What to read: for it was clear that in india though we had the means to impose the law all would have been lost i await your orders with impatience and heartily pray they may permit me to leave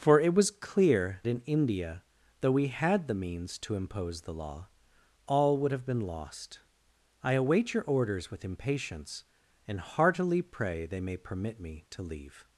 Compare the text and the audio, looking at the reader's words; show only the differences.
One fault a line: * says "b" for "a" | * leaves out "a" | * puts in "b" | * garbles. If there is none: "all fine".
* leaves out "that"